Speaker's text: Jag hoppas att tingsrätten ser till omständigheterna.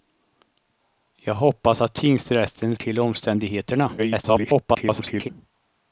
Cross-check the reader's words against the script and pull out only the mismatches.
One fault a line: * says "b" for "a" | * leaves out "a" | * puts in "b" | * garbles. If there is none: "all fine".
* leaves out "ser"
* garbles